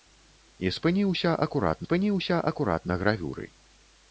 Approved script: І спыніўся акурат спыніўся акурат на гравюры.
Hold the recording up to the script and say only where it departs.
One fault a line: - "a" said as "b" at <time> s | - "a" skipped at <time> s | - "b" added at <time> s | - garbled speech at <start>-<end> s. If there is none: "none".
none